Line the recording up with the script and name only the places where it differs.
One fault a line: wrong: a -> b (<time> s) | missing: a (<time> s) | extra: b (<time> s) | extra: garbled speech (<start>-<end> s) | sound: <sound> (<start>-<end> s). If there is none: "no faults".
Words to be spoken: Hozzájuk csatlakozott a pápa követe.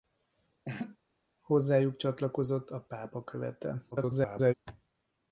sound: laugh (0.6-1.0 s)
extra: garbled speech (3.9-4.5 s)